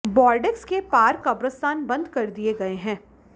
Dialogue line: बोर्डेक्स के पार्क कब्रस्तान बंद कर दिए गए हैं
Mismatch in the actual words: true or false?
false